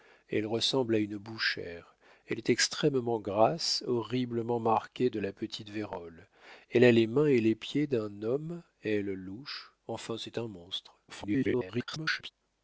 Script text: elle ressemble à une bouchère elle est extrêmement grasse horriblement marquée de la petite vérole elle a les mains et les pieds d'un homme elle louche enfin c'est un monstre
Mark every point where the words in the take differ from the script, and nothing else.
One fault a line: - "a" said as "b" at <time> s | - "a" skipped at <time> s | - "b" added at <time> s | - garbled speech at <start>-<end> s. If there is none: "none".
- garbled speech at 11.1-12.3 s